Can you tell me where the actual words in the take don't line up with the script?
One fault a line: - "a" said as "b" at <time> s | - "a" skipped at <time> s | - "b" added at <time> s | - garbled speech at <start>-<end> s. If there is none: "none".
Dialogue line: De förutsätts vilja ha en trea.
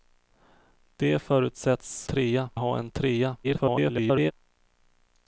- "vilja" said as "trea" at 2.0 s
- garbled speech at 3.4-4.3 s